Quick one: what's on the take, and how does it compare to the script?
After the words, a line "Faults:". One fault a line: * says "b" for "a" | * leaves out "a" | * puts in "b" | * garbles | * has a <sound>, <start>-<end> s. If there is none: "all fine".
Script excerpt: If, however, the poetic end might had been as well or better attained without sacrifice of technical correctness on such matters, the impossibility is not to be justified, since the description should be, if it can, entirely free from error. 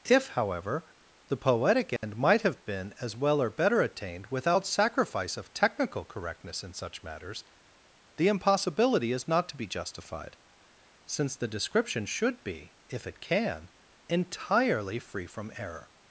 If, however, the poetic end might have been as well or better attained without sacrifice of technical correctness in such matters, the impossibility is not to be justified, since the description should be, if it can, entirely free from error.
Faults:
* has a dropout, 2.0-2.0 s
* says "have" for "had"
* says "in" for "on"